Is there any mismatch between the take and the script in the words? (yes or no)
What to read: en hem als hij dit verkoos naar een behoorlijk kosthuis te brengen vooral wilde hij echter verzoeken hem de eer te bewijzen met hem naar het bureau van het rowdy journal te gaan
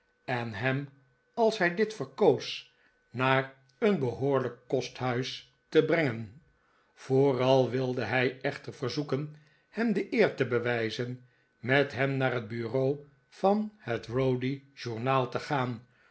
no